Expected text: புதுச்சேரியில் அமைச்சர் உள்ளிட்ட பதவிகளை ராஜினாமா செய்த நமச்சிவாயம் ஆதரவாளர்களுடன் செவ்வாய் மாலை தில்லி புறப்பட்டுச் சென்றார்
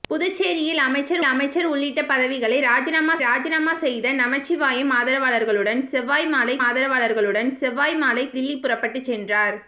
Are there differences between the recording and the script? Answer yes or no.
yes